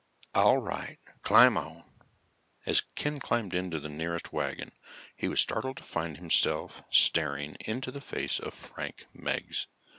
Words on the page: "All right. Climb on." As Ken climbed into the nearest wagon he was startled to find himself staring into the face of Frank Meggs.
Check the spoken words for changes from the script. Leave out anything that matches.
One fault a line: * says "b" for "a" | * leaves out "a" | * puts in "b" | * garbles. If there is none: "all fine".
all fine